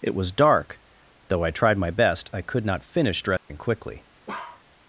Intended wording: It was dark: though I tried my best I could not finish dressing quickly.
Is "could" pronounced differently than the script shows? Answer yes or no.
no